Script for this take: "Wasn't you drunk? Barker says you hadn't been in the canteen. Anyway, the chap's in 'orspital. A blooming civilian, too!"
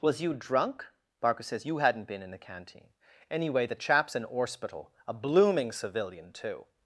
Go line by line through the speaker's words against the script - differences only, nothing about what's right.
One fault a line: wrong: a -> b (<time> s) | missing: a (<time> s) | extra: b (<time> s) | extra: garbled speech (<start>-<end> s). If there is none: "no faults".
wrong: Wasn't -> Was (0.0 s)